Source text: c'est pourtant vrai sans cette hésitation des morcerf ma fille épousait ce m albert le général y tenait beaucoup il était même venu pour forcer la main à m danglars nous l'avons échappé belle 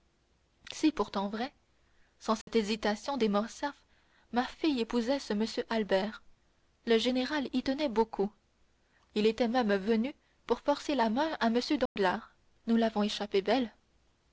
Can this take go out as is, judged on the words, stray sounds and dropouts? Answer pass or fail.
fail